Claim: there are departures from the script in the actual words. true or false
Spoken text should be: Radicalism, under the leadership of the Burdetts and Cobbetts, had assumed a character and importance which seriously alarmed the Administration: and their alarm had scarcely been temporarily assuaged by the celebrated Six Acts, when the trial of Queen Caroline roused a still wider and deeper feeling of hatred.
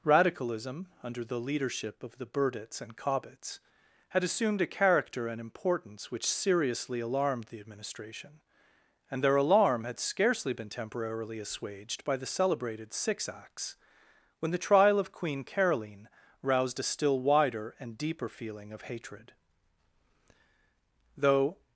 true